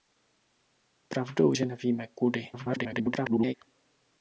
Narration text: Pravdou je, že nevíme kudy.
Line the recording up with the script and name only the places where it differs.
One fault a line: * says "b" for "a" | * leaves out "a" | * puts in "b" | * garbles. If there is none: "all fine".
* leaves out "je"
* garbles